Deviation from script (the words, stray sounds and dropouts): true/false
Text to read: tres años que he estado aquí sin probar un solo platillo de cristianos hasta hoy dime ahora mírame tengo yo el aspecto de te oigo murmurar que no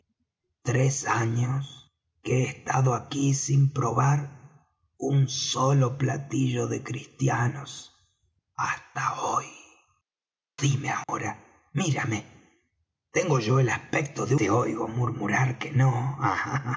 true